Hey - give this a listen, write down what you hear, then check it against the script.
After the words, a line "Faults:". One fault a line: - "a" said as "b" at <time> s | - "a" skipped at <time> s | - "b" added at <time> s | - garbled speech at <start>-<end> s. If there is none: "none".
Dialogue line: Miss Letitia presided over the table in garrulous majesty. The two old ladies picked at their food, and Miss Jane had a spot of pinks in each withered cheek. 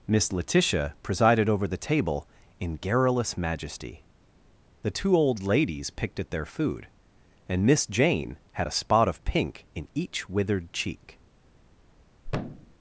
Miss Letitia presided over the table in garrulous majesty. The two old ladies picked at their food, and Miss Jane had a spot of pink in each withered cheek.
Faults:
- "pinks" said as "pink" at 9.2 s